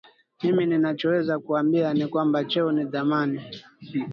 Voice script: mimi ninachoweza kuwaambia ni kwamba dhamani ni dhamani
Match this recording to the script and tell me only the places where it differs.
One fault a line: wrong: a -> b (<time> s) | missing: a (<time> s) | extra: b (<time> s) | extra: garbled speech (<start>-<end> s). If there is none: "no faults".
wrong: dhamani -> cheo (2.5 s)